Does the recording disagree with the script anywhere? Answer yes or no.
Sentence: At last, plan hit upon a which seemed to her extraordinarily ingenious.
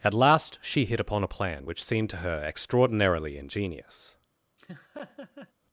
yes